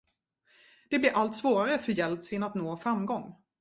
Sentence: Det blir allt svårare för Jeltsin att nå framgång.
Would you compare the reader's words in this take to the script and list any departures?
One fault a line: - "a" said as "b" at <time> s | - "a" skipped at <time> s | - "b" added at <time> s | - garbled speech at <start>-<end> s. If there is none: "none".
none